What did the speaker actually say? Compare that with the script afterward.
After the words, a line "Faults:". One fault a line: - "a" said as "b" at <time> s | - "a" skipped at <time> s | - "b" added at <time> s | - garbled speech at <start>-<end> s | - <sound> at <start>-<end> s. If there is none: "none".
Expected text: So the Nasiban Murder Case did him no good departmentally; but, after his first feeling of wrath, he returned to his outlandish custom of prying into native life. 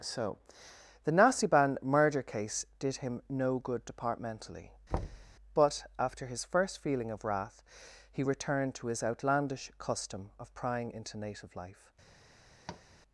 So the Nasiban Murder Case did him no good departmentally; but, after his first feeling of wrath, he returned to his outlandish custom of prying into native life.
Faults:
- thud at 4.9-5.3 s
- tap at 12.7-12.8 s